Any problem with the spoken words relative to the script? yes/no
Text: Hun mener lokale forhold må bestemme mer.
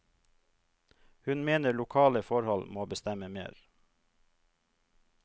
no